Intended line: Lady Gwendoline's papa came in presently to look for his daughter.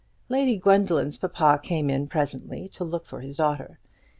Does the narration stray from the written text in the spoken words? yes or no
no